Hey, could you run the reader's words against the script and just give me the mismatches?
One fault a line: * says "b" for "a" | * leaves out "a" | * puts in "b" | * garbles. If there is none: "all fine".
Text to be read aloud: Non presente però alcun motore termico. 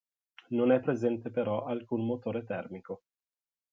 * puts in "è"